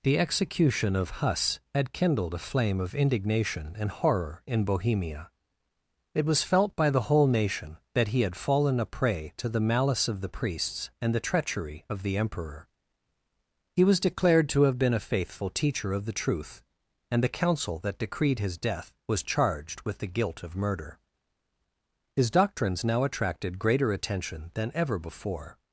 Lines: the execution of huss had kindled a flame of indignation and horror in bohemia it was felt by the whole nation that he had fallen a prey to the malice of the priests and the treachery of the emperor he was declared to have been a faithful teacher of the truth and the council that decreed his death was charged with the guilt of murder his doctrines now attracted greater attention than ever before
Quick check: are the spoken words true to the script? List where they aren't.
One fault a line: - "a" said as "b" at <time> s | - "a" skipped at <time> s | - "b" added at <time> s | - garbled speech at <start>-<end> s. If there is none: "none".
none